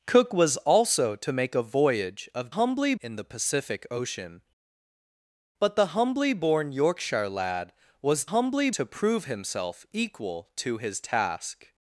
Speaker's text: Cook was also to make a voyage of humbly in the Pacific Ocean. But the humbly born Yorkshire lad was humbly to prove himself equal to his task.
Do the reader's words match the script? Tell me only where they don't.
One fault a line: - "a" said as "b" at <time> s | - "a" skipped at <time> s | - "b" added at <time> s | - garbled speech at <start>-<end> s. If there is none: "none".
none